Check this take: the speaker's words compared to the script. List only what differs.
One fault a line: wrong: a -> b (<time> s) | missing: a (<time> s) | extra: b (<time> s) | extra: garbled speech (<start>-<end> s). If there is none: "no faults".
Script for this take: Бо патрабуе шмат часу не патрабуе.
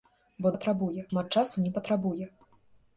no faults